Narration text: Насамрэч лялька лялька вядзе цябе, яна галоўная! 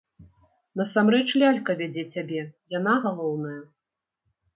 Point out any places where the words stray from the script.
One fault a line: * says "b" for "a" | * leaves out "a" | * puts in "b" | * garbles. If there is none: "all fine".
* leaves out "лялька"